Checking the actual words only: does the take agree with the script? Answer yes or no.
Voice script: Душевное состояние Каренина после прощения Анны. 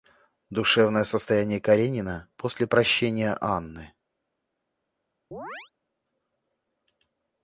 yes